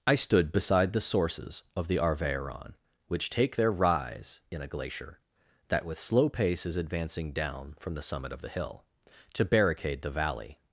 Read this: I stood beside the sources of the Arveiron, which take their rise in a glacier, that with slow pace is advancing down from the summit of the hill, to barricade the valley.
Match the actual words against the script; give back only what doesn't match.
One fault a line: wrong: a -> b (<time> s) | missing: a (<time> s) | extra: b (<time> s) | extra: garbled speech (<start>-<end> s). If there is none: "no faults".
no faults